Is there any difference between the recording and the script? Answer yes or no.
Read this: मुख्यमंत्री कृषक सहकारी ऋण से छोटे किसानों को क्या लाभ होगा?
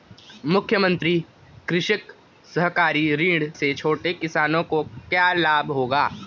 no